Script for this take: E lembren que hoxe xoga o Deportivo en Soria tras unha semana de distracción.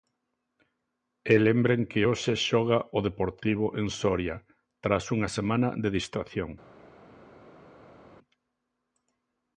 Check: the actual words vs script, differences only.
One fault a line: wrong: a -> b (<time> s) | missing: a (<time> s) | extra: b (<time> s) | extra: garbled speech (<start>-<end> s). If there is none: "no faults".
no faults